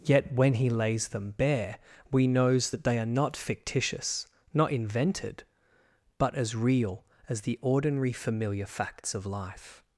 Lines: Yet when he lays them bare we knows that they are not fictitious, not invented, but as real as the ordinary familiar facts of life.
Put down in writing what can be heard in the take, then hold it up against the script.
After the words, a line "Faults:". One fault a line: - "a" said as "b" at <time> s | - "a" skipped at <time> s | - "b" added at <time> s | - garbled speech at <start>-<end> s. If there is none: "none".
Yet when he lays them bare we knows that they are not fictitious, not invented, but as real as the ordinary familiar facts of life.
Faults:
none